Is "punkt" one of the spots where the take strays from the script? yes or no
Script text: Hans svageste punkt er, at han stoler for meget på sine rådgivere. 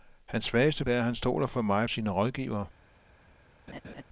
yes